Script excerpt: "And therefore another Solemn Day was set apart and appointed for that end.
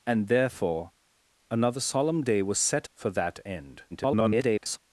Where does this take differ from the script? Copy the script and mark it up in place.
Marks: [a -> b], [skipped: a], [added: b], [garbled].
"And therefore another Solemn Day was set [skipped: apart and appointed] for that end. [garbled]